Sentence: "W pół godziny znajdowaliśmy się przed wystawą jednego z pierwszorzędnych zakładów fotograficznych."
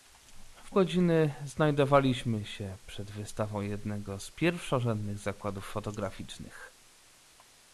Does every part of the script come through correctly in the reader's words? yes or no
no